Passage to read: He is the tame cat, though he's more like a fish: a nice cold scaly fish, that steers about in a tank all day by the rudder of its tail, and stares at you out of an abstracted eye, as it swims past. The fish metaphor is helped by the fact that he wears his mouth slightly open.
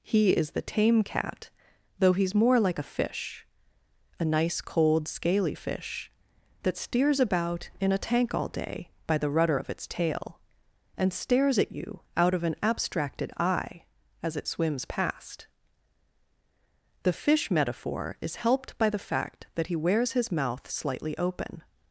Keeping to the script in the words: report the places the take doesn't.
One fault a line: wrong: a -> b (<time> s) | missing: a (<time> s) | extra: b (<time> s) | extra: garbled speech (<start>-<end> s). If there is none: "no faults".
no faults